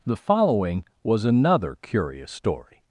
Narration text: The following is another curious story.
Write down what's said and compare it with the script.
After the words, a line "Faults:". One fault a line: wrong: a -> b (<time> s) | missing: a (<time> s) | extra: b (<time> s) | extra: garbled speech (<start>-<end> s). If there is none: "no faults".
The following was another curious story.
Faults:
wrong: is -> was (1.0 s)